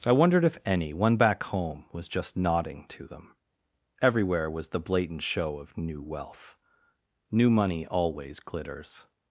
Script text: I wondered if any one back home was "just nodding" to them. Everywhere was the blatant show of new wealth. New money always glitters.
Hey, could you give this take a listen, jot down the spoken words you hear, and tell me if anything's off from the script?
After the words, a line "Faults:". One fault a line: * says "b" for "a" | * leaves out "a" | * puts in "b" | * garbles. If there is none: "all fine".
I wondered if any one back home was "just nodding" to them. Everywhere was the blatant show of new wealth. New money always glitters.
Faults:
all fine